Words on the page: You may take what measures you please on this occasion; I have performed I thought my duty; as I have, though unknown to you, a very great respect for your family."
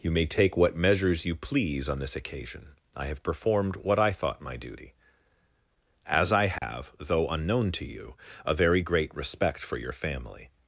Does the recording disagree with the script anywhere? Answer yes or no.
yes